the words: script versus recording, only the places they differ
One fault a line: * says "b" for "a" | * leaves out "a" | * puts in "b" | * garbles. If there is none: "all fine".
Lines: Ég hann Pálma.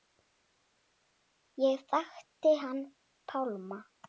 * puts in "þekkti"